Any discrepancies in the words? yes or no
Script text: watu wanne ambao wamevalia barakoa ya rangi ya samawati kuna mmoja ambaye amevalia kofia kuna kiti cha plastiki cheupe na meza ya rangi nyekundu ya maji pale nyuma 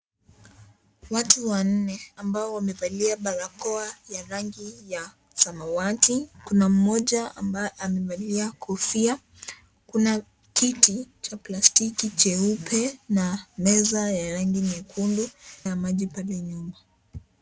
no